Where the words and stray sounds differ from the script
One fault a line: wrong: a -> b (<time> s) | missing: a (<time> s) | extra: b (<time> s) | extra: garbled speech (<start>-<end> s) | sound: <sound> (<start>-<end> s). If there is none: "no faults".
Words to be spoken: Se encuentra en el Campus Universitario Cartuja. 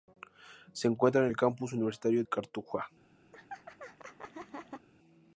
sound: laugh (3.3-4.9 s)